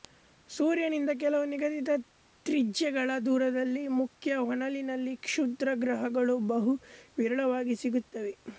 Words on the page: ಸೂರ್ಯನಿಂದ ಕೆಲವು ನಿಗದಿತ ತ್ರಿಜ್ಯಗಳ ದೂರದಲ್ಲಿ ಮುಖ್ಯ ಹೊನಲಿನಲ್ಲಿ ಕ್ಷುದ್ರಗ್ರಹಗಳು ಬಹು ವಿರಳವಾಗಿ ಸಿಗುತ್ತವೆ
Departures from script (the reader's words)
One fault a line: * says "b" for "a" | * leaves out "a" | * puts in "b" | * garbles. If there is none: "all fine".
all fine